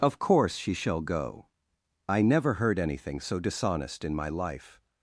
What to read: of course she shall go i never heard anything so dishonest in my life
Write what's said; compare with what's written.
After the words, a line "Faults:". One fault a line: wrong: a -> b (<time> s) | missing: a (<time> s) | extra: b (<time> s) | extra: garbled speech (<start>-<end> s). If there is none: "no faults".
of course she shall go i never heard anything so dishonest in my life
Faults:
no faults